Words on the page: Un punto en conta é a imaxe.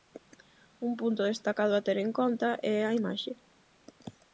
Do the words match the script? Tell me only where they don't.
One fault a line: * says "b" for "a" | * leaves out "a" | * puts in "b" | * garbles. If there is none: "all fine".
* puts in "destacado a ter"